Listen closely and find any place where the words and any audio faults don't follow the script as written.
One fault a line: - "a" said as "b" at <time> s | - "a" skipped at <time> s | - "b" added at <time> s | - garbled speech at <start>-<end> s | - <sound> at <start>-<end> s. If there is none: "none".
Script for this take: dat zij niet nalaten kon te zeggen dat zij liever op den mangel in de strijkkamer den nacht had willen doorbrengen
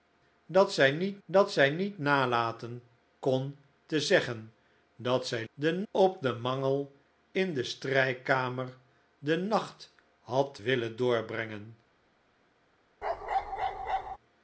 - "dat zij niet" added at 1.2 s
- "liever" said as "den" at 5.5 s
- bark at 13.0-14.2 s